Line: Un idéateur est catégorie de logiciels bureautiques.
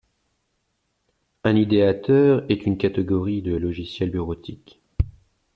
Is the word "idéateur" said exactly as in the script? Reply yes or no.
yes